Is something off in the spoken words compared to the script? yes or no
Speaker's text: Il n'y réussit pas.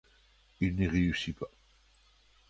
no